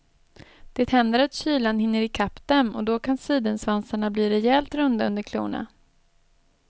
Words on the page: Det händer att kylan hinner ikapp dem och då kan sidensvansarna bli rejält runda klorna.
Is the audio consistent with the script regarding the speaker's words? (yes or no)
no